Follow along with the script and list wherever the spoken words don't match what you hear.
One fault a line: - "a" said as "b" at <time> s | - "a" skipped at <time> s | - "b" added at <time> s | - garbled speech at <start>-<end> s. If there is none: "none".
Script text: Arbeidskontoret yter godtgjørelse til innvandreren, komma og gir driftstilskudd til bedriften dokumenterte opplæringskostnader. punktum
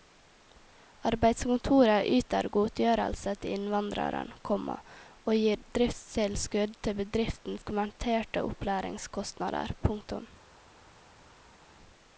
none